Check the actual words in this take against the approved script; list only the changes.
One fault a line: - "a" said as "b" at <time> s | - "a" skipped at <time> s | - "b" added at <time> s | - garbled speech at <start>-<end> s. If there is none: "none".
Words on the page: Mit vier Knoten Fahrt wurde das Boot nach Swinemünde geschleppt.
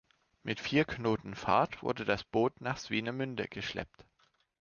none